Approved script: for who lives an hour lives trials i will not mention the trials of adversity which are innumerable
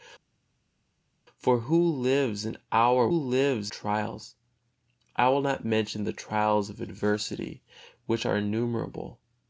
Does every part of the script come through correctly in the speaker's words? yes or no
yes